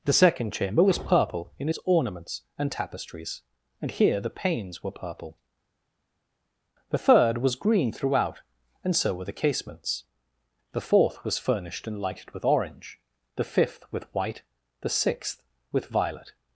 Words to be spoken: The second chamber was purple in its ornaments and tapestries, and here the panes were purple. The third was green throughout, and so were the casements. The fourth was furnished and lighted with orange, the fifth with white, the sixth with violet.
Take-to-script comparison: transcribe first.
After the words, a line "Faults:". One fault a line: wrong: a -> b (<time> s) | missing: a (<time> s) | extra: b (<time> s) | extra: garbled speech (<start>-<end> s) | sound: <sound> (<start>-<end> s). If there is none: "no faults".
The second chamber was purple in its ornaments and tapestries, and here the panes were purple. The third was green throughout, and so were the casements. The fourth was furnished and lighted with orange, the fifth with white, the sixth with violet.
Faults:
no faults